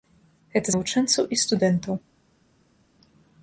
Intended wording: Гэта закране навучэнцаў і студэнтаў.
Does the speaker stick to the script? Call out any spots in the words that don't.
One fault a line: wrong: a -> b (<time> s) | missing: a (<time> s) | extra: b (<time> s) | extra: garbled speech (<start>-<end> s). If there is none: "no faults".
missing: закране (0.7 s)